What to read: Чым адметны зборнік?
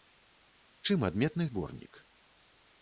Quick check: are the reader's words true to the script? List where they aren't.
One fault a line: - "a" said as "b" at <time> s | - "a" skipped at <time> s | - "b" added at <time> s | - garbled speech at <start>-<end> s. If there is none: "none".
none